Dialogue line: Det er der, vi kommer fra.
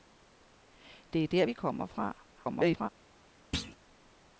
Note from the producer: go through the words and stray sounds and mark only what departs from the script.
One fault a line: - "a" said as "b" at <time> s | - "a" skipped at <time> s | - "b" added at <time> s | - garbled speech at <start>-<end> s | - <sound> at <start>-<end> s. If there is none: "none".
- garbled speech at 2.3-2.9 s
- thud at 3.5-3.8 s